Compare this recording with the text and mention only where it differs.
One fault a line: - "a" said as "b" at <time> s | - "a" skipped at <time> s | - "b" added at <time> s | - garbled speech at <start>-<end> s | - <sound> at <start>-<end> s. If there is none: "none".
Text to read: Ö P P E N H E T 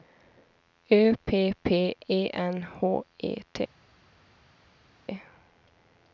none